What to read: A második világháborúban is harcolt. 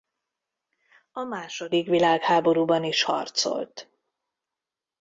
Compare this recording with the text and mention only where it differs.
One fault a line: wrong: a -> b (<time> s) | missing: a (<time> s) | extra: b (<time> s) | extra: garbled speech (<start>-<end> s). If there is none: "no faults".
no faults